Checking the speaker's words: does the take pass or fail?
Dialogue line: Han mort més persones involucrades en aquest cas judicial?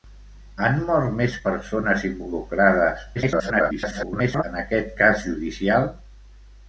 fail